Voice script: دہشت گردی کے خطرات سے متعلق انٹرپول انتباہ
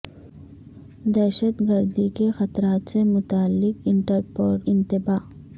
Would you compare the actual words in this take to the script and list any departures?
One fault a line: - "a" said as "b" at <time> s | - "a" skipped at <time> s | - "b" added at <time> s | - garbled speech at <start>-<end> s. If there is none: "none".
none